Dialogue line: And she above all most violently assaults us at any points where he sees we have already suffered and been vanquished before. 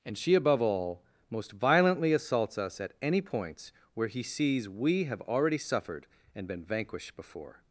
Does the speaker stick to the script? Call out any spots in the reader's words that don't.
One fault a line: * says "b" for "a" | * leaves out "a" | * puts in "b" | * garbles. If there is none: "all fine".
all fine